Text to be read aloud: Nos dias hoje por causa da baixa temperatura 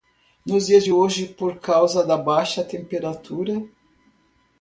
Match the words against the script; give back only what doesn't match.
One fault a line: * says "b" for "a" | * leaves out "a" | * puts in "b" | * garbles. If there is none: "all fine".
* puts in "de"